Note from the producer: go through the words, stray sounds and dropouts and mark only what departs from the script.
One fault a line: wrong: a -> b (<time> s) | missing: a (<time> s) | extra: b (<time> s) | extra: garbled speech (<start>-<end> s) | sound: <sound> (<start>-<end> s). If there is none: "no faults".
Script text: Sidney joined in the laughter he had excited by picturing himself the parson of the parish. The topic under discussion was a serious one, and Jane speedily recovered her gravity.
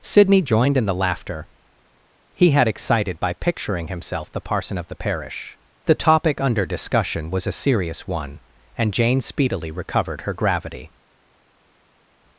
no faults